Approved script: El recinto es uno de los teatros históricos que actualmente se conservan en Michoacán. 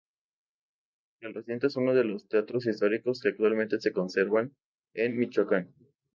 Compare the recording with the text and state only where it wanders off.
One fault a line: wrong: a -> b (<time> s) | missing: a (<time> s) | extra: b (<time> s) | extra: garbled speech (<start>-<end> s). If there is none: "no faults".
no faults